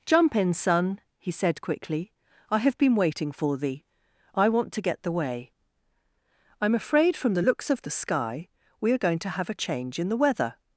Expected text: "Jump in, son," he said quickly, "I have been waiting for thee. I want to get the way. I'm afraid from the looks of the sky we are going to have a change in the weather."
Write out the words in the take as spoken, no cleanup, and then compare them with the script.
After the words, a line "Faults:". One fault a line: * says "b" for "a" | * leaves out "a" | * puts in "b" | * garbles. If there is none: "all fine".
"Jump in, son," he said quickly, "I have been waiting for thee. I want to get the way. I'm afraid from the looks of the sky we are going to have a change in the weather."
Faults:
all fine